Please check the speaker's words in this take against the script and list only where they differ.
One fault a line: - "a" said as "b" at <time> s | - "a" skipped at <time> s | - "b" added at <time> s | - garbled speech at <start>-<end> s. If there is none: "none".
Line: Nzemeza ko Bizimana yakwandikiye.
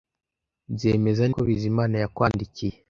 none